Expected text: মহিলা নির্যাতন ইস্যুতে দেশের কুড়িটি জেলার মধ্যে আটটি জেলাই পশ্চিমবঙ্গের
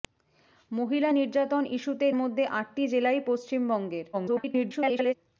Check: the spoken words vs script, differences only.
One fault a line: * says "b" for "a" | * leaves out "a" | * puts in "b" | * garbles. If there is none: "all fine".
* leaves out "দেশের কুড়িটি জেলার"
* garbles